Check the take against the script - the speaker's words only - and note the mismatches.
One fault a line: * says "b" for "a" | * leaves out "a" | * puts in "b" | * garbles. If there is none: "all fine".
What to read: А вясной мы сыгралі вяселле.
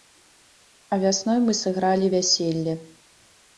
all fine